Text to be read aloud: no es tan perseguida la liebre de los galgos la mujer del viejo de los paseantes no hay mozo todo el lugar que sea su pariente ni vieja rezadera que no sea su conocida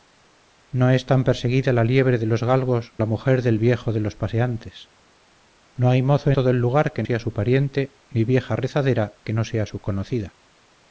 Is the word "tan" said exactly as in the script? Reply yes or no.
yes